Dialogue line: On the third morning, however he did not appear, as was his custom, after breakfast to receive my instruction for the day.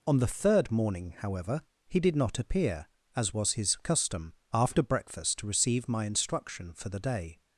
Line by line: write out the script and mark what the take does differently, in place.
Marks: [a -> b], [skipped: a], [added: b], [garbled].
On the third morning, however he did not appear, as was his custom, after breakfast to receive my instruction for the day.